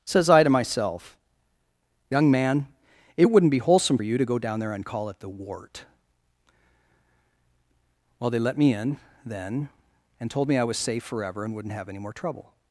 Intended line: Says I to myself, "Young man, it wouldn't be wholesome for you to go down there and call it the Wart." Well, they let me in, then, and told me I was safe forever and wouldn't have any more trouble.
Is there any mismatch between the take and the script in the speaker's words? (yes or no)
yes